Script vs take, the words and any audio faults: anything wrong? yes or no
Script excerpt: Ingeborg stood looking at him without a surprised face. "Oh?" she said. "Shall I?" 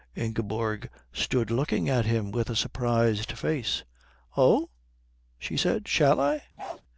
yes